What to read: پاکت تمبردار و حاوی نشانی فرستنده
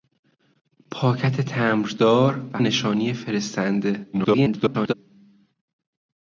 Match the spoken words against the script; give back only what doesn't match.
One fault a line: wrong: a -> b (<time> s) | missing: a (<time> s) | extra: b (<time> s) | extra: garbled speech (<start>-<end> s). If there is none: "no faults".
missing: حاوی (2.6 s)
extra: garbled speech (4.1-4.9 s)